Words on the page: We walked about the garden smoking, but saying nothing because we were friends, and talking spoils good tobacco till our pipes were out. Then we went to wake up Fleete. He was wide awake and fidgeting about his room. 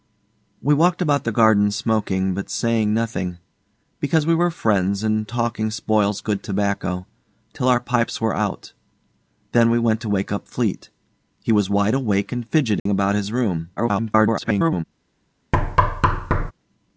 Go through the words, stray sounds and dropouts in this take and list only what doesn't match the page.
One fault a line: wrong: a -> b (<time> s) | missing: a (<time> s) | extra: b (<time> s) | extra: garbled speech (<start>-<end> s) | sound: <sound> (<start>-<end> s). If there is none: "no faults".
sound: dropout (12.8-12.9 s)
extra: garbled speech (13.8-14.8 s)
sound: thud (15.5-16.5 s)